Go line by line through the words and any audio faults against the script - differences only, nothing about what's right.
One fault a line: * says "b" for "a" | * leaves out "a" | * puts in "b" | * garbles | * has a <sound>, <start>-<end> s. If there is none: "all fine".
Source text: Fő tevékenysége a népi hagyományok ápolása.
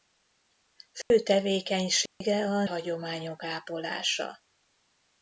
* has a dropout, 1.0-1.1 s
* has a dropout, 2.1-2.2 s
* leaves out "népi"